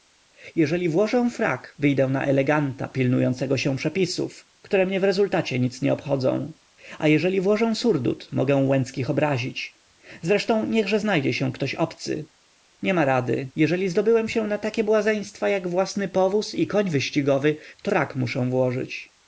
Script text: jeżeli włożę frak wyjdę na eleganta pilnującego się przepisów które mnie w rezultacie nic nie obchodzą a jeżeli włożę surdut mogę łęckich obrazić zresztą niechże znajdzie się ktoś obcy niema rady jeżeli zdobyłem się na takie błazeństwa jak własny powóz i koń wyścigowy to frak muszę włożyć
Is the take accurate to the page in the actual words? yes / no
yes